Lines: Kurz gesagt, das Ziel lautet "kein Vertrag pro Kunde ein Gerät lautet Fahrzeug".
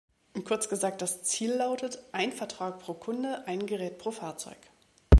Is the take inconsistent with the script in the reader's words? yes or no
yes